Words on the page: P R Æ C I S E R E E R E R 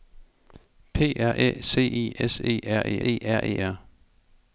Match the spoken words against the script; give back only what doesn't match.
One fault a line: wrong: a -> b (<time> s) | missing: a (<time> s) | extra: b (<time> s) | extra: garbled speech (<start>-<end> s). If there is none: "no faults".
no faults